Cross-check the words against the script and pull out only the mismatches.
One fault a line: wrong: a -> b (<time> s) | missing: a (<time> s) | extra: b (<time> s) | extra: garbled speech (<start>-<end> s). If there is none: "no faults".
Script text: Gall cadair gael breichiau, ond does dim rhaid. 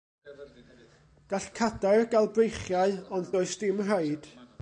no faults